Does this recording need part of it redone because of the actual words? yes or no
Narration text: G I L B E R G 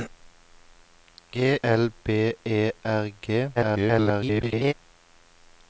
yes